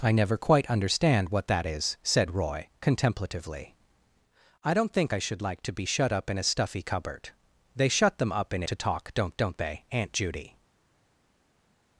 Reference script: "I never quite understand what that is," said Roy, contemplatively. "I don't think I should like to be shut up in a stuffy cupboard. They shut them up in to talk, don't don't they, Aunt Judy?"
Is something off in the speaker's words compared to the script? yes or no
no